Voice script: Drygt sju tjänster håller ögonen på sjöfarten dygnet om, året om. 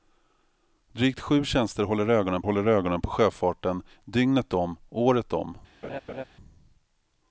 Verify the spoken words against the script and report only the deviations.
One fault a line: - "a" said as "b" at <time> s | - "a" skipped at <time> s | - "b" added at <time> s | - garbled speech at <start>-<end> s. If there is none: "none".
- "håller ögonen" added at 2.4 s